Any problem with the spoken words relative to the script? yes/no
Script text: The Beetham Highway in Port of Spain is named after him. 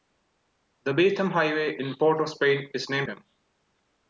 yes